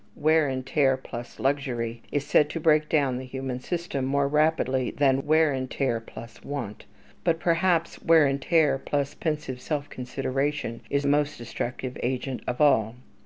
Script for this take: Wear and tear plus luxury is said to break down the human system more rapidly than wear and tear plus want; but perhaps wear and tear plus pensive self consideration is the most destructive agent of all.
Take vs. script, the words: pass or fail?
pass